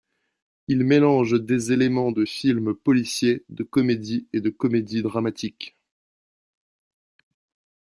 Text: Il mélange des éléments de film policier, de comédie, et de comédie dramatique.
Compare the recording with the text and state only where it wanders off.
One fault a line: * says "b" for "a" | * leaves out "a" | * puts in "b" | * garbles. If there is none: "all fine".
all fine